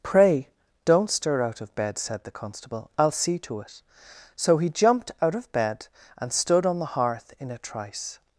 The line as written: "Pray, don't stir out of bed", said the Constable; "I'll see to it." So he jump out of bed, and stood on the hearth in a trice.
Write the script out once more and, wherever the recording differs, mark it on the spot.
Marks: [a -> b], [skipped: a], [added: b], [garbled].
"Pray, don't stir out of bed", said the Constable; "I'll see to it." So he [jump -> jumped] out of bed, and stood on the hearth in a trice.